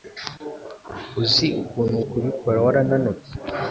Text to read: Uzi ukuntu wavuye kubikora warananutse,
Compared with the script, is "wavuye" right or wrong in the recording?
wrong